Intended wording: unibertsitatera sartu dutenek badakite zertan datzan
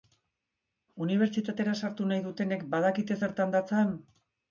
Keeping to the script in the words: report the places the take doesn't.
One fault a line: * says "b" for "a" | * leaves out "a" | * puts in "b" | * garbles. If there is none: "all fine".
* puts in "nahi"